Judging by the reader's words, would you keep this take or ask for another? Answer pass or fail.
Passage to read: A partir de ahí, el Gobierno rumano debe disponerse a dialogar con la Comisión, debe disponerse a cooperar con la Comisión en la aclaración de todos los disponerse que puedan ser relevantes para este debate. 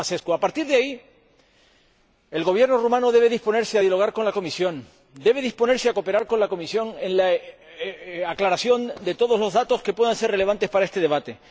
fail